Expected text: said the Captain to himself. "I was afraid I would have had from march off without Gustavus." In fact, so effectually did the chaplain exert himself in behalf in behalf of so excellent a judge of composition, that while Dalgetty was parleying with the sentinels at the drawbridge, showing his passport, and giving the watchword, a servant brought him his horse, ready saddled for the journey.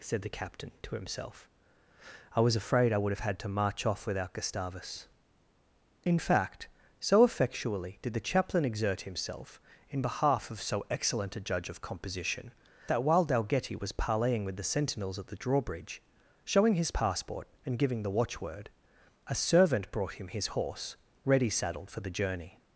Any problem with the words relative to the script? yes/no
yes